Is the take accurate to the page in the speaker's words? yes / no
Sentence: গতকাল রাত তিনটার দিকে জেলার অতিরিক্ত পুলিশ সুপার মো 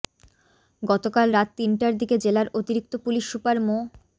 yes